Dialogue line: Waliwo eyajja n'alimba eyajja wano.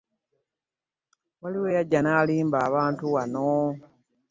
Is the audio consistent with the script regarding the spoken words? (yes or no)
no